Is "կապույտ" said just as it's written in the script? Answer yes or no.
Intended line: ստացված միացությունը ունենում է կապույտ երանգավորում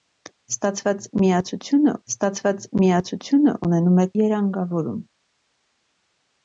no